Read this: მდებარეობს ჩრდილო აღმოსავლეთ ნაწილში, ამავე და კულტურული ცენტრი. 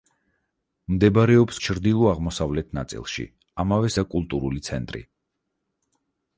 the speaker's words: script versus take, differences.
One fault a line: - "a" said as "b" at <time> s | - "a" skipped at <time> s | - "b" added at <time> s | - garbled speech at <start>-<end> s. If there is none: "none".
none